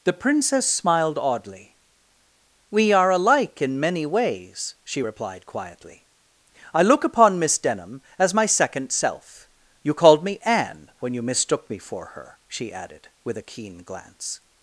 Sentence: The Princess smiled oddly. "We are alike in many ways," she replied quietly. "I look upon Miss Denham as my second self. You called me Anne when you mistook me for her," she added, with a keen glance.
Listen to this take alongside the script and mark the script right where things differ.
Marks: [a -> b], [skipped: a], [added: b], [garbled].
The Princess smiled oddly. "We are alike in many ways," she replied quietly. "I look upon Miss Denham as my second self. You called me Anne when you mistook me for her," she added, with a keen glance.